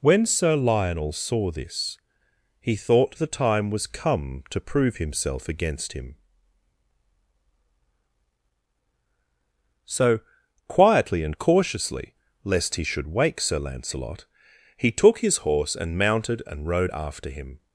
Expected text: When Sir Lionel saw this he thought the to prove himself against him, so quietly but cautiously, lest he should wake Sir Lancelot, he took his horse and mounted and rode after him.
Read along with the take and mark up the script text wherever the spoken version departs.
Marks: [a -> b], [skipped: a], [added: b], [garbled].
When Sir Lionel saw this he thought the [added: time was come] to prove himself against him, so quietly [but -> and] cautiously, lest he should wake Sir Lancelot, he took his horse and mounted and rode after him.